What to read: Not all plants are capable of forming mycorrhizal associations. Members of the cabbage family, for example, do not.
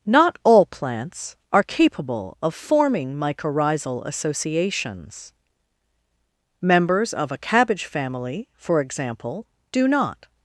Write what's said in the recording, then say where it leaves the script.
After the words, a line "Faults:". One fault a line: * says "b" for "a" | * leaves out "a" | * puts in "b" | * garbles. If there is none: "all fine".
Not all plants are capable of forming mycorrhizal associations. Members of a cabbage family, for example, do not.
Faults:
* says "a" for "the"